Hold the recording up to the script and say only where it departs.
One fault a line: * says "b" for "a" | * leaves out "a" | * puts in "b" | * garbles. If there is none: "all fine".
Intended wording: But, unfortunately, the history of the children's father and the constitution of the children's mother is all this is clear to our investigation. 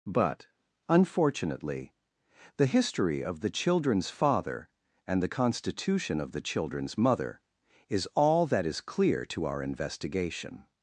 * says "that" for "this"